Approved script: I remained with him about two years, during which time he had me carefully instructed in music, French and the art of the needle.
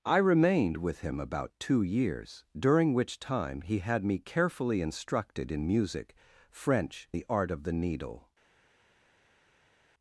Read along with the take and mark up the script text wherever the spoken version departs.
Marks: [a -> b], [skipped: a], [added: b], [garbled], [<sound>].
I remained with him about two years, during which time he had me carefully instructed in music, French [skipped: and] the art of the needle.